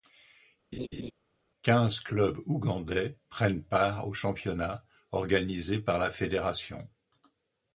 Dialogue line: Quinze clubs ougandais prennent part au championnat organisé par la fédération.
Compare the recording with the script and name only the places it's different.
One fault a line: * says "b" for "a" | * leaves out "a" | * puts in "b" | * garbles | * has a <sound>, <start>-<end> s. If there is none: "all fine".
* has a laugh, 0.7-1.1 s